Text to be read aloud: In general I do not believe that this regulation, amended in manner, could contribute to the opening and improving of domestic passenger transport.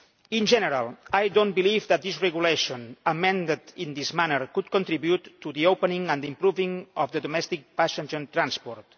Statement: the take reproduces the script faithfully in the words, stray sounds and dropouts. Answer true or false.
false